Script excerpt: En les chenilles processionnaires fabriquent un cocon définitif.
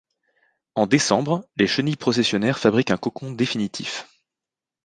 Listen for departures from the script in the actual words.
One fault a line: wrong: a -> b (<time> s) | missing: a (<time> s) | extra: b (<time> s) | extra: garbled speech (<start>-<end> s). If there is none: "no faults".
extra: décembre (0.9 s)